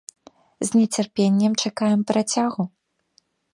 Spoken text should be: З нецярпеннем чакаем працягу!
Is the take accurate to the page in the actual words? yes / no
yes